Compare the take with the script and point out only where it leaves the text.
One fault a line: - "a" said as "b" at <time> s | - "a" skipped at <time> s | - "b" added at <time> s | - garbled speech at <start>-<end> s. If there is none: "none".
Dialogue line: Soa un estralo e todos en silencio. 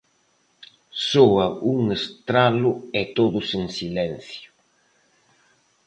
none